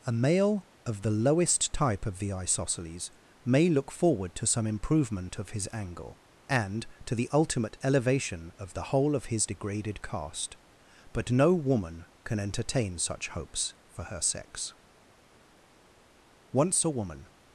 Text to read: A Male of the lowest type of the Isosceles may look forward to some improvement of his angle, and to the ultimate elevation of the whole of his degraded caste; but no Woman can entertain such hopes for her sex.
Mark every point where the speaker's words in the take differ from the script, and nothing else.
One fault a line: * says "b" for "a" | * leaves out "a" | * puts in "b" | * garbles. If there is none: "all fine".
* puts in "Once a Woman"